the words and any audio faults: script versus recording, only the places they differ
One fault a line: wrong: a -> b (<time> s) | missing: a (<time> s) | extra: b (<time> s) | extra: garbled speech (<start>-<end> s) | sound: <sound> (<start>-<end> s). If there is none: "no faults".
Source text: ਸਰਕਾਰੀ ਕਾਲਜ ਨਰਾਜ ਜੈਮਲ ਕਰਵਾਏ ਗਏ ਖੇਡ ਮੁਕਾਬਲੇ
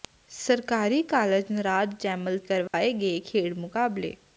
sound: dropout (2.7-2.7 s)